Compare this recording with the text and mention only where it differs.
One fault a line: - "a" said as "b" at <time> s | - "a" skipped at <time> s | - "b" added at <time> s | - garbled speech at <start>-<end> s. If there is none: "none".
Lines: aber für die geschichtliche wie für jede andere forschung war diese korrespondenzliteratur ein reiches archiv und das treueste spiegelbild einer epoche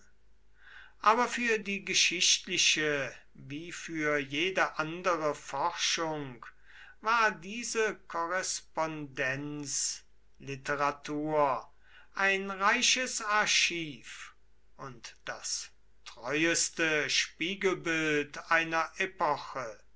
none